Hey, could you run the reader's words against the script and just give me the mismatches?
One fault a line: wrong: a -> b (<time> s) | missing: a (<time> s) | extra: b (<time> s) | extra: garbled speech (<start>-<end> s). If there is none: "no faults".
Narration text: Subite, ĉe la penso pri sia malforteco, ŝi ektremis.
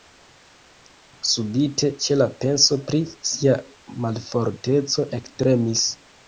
missing: ŝi (5.1 s)